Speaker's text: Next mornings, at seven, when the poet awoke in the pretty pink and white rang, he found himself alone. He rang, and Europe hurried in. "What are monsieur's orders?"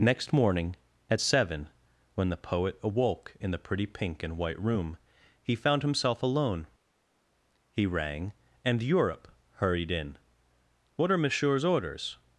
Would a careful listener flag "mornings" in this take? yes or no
yes